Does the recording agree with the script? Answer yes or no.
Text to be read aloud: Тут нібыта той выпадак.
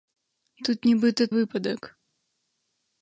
no